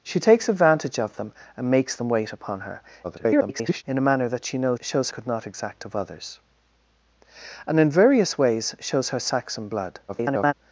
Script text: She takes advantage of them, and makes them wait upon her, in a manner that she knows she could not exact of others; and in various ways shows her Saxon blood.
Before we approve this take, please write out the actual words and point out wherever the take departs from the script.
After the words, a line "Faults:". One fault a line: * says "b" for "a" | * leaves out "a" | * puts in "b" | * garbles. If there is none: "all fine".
She takes advantage of them, and makes them wait upon her, [garbled] in a manner that she knows shows could not exact of others; and in various ways shows her Saxon blood. [garbled]
Faults:
* garbles
* says "shows" for "she"
* garbles